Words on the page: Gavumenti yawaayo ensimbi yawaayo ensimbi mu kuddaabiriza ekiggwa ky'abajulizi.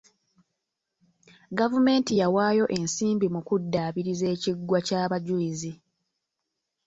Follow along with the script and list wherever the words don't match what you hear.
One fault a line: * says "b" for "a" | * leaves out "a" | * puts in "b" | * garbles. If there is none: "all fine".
* leaves out "yawaayo ensimbi"